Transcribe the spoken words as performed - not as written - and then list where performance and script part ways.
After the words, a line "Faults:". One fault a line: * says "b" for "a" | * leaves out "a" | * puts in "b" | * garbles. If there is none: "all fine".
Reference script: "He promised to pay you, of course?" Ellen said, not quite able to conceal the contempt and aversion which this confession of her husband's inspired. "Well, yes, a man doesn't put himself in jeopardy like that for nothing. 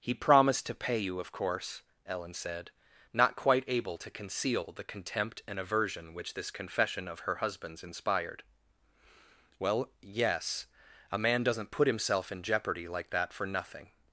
"He promised to pay you, of course?" Ellen said, not quite able to conceal the contempt and aversion which this confession of her husband's inspired. "Well, yes, a man doesn't put himself in jeopardy like that for nothing.
Faults:
all fine